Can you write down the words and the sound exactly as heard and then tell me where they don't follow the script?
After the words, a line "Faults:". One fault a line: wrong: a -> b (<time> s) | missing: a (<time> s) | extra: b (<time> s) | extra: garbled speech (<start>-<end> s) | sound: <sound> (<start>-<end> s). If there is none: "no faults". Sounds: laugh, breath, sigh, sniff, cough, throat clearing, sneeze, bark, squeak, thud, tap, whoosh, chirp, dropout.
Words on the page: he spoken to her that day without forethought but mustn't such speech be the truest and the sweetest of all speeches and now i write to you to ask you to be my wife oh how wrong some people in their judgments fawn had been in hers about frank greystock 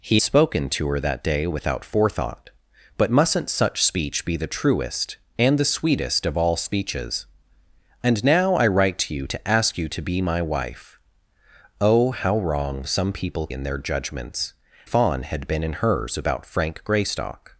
he spoken to her that day without forethought but mustn't such speech be the truest and the sweetest of all speeches and now i write to you to ask you to be my wife oh how wrong some people in their judgments fawn had been in hers about frank greystock
Faults:
no faults